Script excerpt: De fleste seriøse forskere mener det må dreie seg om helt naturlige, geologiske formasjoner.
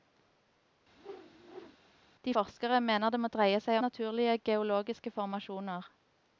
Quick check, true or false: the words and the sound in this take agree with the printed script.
false